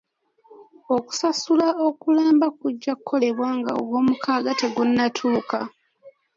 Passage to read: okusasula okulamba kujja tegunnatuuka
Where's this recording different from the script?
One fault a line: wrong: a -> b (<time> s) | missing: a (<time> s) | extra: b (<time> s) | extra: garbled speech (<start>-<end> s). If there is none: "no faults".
extra: kukolebwa nga ogwomukaaga (3.0 s)